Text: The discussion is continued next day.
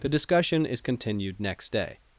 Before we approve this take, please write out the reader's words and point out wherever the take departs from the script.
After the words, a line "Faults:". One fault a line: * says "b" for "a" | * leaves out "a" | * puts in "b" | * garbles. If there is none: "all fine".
The discussion is continued next day.
Faults:
all fine